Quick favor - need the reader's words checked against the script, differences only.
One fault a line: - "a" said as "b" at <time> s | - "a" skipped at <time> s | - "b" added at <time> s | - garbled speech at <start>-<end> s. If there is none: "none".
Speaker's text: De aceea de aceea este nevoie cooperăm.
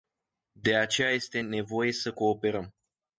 - "de aceea" skipped at 1.1 s
- "să" added at 1.9 s